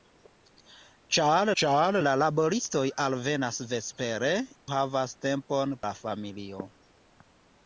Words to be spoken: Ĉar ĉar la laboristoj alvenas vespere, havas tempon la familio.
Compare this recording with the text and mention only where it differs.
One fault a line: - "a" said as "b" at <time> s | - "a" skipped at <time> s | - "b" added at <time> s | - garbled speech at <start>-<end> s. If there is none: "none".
none